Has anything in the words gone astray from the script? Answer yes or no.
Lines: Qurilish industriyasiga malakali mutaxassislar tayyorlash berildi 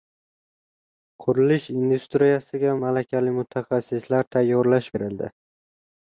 no